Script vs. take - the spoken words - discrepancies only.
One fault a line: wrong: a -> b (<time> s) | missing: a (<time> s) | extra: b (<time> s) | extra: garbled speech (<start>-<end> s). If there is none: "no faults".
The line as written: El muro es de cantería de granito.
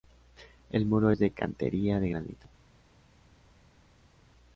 no faults